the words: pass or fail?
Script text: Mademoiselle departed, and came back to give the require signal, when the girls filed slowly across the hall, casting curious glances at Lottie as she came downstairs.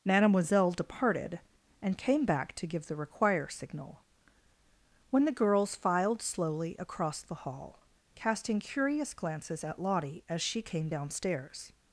pass